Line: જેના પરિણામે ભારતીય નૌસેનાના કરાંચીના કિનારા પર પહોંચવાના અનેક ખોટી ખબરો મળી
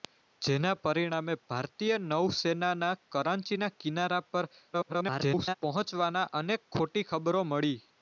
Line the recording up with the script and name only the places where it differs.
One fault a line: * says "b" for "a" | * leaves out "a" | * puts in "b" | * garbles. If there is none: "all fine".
* garbles